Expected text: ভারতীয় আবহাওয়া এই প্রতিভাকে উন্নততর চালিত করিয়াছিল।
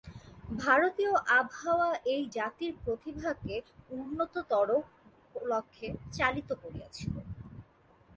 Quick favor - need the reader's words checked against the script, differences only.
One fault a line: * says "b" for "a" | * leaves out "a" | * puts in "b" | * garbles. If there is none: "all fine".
* puts in "জাতির"
* puts in "লক্ষ্যে"